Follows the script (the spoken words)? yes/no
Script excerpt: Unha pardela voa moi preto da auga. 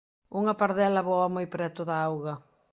yes